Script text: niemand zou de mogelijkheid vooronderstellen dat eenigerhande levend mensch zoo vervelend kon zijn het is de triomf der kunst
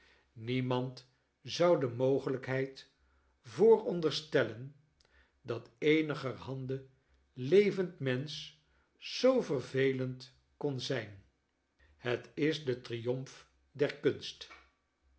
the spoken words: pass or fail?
pass